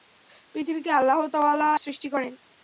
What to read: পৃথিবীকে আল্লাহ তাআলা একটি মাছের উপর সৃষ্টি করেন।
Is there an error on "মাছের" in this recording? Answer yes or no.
yes